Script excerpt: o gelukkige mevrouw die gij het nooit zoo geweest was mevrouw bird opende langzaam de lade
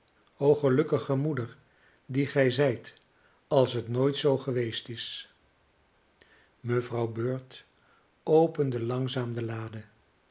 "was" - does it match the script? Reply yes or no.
no